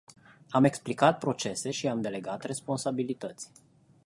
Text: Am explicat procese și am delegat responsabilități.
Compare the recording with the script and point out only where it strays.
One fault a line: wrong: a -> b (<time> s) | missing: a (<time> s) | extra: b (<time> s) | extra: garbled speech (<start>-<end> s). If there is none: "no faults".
no faults